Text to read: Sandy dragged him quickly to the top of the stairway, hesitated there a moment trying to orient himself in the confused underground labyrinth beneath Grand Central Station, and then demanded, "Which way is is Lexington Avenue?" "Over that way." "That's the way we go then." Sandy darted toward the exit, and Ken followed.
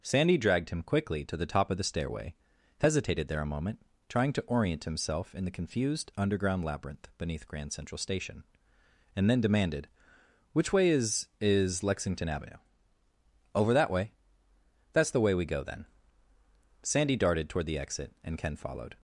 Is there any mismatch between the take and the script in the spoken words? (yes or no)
no